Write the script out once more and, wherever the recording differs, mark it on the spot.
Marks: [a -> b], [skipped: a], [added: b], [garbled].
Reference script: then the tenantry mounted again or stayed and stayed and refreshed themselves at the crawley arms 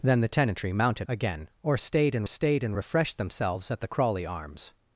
then the tenantry mounted again or stayed and stayed and refreshed themselves at the crawley arms